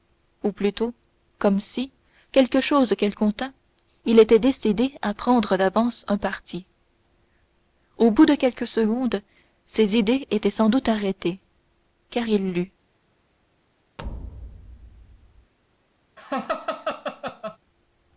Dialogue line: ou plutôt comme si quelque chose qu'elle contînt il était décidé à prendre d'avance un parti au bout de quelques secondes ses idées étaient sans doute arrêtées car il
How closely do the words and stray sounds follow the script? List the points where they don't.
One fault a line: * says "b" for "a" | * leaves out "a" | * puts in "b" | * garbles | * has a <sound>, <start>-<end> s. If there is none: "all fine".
* has a thud, 14.0-15.5 s
* has a laugh, 16.2-17.6 s